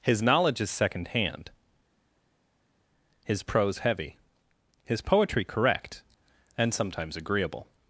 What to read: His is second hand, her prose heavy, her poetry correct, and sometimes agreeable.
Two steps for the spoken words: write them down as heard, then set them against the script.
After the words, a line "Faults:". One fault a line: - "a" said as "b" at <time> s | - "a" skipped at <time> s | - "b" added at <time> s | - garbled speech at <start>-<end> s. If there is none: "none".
His knowledge is second hand, his prose heavy, his poetry correct, and sometimes agreeable.
Faults:
- "knowledge" added at 0.2 s
- "her" said as "his" at 3.2 s
- "her" said as "his" at 4.8 s